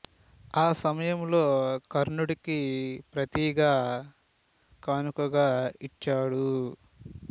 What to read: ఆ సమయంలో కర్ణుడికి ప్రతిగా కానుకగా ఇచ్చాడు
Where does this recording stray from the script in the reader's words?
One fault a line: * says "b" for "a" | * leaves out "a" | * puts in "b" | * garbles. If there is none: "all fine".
all fine